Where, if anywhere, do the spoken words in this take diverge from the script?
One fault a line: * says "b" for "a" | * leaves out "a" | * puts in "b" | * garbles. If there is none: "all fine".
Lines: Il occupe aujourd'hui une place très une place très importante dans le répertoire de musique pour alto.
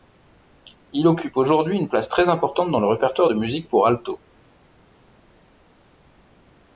* leaves out "une place très"